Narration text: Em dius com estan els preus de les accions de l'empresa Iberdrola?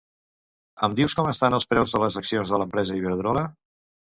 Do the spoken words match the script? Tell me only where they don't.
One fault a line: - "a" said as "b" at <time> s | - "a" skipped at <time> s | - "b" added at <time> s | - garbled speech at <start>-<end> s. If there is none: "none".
none